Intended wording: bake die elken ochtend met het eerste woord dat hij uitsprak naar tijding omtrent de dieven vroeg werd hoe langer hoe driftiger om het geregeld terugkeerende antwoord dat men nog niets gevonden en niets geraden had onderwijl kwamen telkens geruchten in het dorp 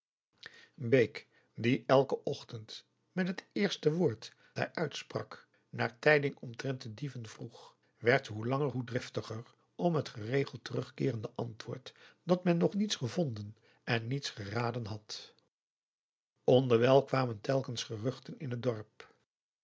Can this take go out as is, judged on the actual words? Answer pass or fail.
fail